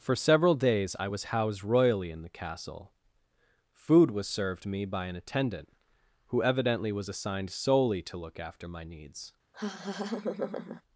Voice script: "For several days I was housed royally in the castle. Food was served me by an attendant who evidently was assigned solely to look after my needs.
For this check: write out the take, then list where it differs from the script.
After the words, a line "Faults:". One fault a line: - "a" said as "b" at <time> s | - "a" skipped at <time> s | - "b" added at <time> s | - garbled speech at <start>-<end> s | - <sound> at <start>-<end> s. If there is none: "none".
"For several days I was housed royally in the castle. Food was served me by an attendant who evidently was assigned solely to look after my needs.
Faults:
- laugh at 9.5-10.8 s